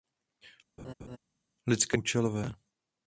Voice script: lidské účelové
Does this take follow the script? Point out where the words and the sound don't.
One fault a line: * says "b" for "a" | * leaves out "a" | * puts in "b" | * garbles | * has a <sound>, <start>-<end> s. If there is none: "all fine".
* has a laugh, 0.8-1.2 s